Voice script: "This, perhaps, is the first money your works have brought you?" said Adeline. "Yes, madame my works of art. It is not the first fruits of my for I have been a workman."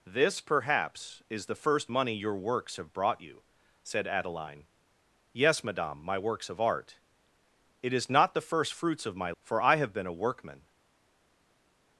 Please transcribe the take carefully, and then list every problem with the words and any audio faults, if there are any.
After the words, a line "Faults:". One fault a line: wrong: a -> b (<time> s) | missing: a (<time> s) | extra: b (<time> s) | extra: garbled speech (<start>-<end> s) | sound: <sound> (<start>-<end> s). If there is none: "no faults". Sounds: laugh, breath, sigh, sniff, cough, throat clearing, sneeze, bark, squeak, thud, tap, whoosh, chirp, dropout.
"This, perhaps, is the first money your works have brought you?" said Adeline. "Yes, madame my works of art. It is not the first fruits of my for I have been a workman."
Faults:
no faults